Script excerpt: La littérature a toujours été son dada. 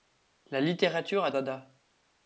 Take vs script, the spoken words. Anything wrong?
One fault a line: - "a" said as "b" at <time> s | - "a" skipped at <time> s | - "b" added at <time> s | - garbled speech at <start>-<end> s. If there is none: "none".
- "toujours été son" skipped at 1.3 s